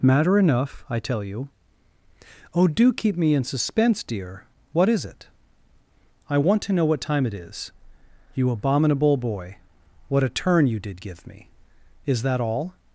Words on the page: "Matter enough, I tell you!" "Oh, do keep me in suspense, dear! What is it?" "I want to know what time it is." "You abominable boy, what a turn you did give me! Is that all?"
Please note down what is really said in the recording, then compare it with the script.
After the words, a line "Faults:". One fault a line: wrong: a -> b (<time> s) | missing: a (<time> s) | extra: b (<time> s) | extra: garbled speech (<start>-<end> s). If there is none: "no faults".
"Matter enough, I tell you!" "Oh, do keep me in suspense, dear! What is it?" "I want to know what time it is." "You abominable boy, what a turn you did give me! Is that all?"
Faults:
no faults